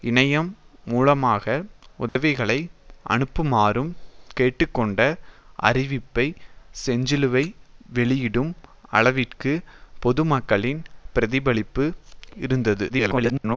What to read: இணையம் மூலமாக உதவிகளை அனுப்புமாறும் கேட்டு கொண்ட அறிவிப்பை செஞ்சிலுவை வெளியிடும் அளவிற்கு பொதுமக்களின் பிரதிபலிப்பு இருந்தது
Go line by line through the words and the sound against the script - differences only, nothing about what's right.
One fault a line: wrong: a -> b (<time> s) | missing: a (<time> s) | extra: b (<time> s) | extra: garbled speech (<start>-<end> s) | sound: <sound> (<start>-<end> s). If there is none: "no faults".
sound: dropout (2.1-2.2 s)
extra: garbled speech (12.9-13.6 s)